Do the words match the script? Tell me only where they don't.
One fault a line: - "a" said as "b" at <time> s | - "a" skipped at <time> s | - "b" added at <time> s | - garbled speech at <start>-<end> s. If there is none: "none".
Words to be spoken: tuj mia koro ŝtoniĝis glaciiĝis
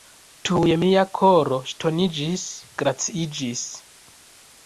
none